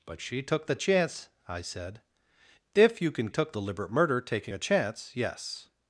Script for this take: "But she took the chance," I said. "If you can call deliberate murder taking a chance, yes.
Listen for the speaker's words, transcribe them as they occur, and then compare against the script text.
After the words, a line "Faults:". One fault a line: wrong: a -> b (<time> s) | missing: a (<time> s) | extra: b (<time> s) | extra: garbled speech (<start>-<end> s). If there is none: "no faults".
"But she took the chance," I said. "If you can took deliberate murder taking a chance, yes.
Faults:
wrong: call -> took (3.3 s)